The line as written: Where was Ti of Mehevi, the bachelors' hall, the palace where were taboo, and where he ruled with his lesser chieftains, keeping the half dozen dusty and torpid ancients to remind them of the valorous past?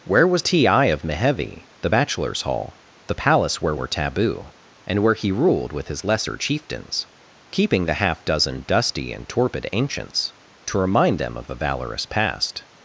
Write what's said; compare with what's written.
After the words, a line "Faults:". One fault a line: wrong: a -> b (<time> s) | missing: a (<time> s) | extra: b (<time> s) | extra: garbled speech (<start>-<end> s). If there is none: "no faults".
Where was Ti of Mehevi, the bachelors' hall, the palace where were taboo, and where he ruled with his lesser chieftains, keeping the half dozen dusty and torpid ancients to remind them of the valorous past?
Faults:
no faults